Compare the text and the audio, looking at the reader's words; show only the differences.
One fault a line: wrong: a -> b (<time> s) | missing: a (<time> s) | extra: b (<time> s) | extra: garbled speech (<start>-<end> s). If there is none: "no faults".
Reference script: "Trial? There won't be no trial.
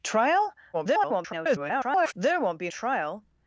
extra: garbled speech (0.7-2.1 s)
missing: no (2.7 s)